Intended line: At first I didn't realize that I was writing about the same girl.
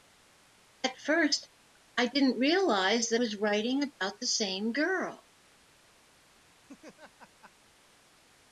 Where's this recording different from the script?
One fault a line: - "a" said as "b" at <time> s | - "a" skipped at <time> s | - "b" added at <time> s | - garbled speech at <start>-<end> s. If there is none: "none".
- "I" skipped at 3.2 s